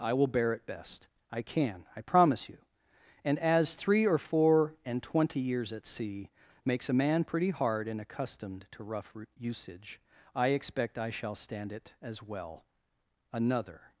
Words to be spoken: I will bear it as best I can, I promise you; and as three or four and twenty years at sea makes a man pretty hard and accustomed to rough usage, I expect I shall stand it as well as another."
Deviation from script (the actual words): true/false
true